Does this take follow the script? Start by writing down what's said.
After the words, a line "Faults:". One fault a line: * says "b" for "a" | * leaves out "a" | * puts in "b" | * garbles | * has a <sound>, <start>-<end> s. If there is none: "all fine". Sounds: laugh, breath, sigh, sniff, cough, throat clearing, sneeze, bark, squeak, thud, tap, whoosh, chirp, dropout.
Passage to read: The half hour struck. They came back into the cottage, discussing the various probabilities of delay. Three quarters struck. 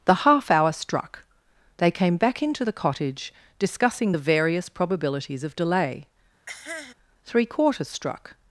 The half hour struck. They came back into the cottage, discussing the various probabilities of delay. Three quarters struck.
Faults:
* has a cough, 6.5-6.9 s